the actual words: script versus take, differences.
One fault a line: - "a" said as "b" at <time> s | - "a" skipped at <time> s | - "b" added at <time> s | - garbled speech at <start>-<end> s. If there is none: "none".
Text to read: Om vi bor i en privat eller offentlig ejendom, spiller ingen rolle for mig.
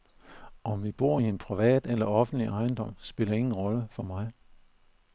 none